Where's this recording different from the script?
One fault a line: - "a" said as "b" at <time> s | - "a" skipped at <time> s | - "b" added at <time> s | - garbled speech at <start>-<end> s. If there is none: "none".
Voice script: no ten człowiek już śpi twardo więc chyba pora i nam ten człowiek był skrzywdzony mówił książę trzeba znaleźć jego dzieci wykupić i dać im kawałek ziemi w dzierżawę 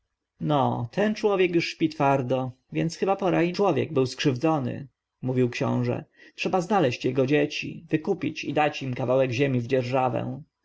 - "nam ten" skipped at 3.5 s